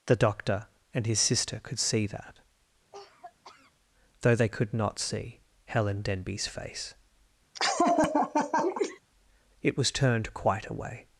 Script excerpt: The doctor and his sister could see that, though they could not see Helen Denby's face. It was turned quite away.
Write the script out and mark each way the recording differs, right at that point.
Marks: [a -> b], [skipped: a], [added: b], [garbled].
The doctor and his sister could see that, though they could not see Helen Denby's face. It was turned quite away.